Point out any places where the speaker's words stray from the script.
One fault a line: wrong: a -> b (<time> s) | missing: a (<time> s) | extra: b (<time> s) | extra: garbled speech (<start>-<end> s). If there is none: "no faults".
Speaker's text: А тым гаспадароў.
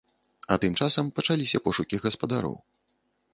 extra: часам пачаліся пошукі (0.8 s)